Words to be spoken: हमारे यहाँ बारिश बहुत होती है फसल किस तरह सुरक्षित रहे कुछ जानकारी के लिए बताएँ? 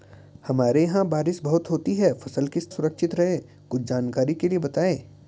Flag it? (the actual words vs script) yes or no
yes